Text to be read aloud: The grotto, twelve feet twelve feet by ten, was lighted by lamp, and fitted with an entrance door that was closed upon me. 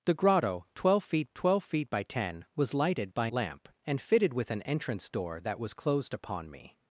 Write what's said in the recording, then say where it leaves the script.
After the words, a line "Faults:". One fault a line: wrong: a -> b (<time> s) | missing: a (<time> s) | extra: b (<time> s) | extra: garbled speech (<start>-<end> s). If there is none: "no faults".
The grotto, twelve feet twelve feet by ten, was lighted by lamp, and fitted with an entrance door that was closed upon me.
Faults:
no faults